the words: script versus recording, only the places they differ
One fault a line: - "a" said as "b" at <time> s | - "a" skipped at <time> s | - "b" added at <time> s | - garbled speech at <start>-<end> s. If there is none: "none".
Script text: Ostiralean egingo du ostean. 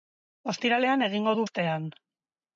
none